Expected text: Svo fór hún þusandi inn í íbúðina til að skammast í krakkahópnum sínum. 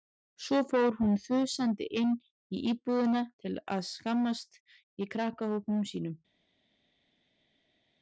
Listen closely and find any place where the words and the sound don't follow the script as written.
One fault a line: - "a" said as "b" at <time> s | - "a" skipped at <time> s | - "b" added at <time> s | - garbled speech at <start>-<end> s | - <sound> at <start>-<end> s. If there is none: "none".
none